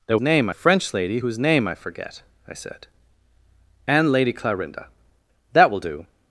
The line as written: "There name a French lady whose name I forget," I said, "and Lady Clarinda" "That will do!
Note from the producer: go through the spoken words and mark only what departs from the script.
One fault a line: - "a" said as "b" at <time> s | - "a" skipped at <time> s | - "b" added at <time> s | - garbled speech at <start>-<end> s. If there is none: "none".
none